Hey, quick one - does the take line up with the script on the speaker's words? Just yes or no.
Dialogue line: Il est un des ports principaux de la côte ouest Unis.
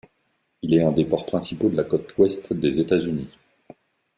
no